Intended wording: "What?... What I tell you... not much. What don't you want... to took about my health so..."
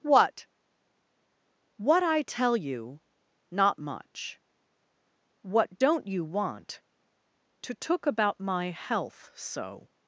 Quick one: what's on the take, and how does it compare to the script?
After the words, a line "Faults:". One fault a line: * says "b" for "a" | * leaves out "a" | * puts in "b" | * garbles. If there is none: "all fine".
"What?... What I tell you... not much. What don't you want... to took about my health so..."
Faults:
all fine